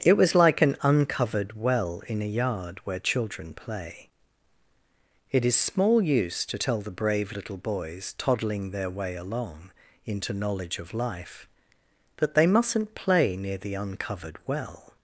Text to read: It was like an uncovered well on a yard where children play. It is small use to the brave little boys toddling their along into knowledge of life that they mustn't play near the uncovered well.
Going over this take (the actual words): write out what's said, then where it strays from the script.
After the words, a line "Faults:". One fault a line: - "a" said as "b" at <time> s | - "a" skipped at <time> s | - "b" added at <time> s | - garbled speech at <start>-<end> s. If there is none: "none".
It was like an uncovered well in a yard where children play. It is small use to tell the brave little boys toddling their way along into knowledge of life that they mustn't play near the uncovered well.
Faults:
- "on" said as "in" at 2.1 s
- "tell" added at 6.6 s
- "way" added at 8.9 s